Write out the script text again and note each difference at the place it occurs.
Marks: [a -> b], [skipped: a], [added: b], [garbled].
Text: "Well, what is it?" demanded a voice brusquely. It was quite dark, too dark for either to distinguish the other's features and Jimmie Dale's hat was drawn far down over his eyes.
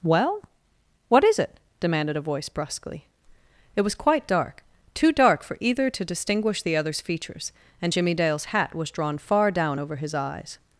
"Well, what is it?" demanded a voice brusquely. It was quite dark, too dark for either to distinguish the other's features and Jimmie Dale's hat was drawn far down over his eyes.